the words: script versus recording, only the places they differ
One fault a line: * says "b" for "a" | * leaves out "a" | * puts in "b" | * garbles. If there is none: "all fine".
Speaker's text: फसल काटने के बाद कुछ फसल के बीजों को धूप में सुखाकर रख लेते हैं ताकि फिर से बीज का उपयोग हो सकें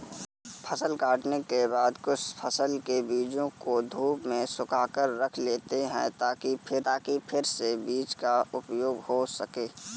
* puts in "ताकि फिर"